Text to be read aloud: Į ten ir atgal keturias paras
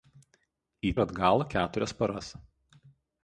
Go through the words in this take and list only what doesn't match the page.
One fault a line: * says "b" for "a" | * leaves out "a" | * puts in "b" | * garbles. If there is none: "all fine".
* leaves out "ten"